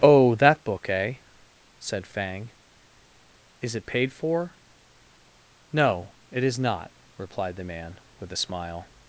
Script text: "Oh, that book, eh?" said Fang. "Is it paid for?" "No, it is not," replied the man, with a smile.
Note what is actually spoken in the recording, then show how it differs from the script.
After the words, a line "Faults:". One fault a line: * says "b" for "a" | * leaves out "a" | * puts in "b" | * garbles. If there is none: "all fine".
"Oh, that book, eh?" said Fang. "Is it paid for?" "No, it is not," replied the man, with a smile.
Faults:
all fine